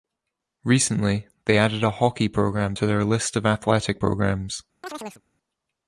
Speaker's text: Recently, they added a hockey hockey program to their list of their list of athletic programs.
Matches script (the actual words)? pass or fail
fail